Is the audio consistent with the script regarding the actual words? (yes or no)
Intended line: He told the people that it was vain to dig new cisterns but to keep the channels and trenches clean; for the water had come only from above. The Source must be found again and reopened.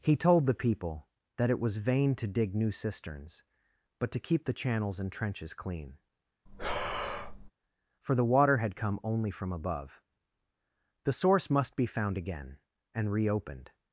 yes